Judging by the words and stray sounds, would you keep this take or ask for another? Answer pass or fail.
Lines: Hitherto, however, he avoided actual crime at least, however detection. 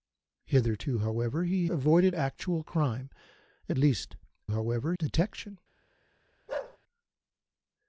fail